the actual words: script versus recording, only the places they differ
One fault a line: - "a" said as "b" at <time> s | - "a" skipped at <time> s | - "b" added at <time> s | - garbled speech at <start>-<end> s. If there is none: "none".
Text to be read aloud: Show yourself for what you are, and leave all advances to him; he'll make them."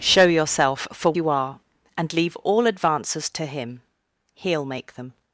- "what" skipped at 1.1 s